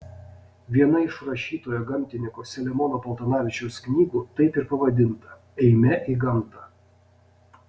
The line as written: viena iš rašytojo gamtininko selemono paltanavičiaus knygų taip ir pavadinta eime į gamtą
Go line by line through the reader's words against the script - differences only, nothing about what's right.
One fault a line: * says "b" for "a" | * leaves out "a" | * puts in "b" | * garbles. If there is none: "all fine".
all fine